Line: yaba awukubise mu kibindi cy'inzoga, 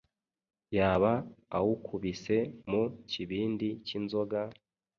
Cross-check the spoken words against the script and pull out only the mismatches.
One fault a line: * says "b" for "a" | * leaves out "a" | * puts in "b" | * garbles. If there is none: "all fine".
all fine